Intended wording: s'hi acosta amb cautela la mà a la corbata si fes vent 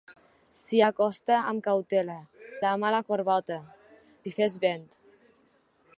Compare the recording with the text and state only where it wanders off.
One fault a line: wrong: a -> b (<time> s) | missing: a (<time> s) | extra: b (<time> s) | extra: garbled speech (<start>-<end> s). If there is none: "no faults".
no faults